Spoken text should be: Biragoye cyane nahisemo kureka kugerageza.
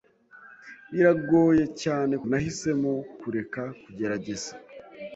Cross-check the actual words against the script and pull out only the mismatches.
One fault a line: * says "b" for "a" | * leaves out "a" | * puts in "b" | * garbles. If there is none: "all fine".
all fine